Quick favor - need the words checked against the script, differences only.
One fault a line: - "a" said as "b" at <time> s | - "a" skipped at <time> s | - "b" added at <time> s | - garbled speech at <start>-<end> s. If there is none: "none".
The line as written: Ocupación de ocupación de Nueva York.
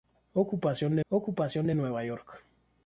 none